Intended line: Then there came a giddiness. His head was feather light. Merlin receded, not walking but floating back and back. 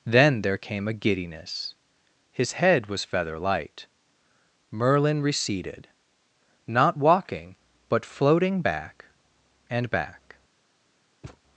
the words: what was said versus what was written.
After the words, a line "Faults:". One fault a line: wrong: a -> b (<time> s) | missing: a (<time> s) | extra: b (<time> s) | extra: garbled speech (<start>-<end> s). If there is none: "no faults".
Then there came a giddiness. His head was feather light. Merlin receded, not walking but floating back and back.
Faults:
no faults